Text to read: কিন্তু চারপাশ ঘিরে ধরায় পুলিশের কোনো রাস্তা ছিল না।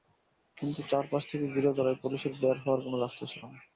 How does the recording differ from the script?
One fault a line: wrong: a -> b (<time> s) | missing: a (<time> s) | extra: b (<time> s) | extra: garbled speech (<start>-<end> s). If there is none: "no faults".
extra: থেকে (1.2 s)
extra: বের হওয়ার (2.4 s)